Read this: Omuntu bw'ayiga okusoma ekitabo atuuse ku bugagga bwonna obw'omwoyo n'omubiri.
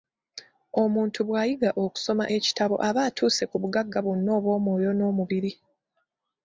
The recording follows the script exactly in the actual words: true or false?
false